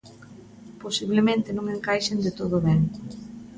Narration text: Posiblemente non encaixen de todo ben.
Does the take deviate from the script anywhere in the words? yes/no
no